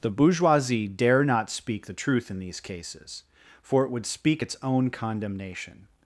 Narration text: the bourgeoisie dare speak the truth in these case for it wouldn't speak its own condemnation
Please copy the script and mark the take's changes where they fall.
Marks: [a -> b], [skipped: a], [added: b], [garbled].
the bourgeoisie dare [added: not] speak the truth in these [case -> cases] for it [wouldn't -> would] speak its own condemnation